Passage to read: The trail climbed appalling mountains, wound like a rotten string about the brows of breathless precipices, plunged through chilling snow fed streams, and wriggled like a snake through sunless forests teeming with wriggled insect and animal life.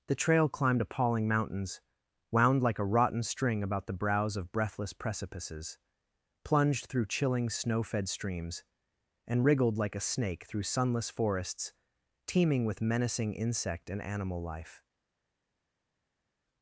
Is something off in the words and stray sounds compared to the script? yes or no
yes